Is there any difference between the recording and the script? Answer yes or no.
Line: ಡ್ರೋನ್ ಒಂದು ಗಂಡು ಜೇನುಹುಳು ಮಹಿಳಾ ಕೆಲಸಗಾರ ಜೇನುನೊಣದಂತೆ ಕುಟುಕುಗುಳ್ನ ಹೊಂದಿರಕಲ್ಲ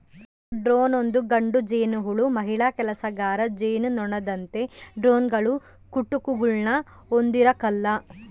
yes